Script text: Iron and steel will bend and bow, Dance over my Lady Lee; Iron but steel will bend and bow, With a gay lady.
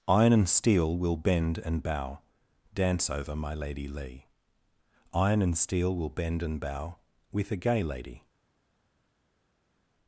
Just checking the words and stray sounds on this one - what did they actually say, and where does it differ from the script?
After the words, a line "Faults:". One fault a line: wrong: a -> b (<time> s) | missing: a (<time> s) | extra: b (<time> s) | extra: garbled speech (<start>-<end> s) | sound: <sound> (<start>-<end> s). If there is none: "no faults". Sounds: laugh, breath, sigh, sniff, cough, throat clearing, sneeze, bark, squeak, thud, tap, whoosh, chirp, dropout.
Iron and steel will bend and bow, Dance over my Lady Lee; Iron and steel will bend and bow, With a gay lady.
Faults:
wrong: but -> and (5.4 s)